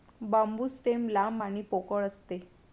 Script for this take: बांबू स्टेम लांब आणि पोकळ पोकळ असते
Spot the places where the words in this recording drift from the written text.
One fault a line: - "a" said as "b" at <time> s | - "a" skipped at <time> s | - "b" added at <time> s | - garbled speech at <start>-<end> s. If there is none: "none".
- "पोकळ" skipped at 2.1 s